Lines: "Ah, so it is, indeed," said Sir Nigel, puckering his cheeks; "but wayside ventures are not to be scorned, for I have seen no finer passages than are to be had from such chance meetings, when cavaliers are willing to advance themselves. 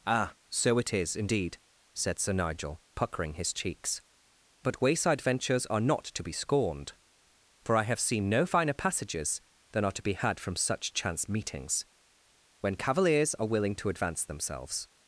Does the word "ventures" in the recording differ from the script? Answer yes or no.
no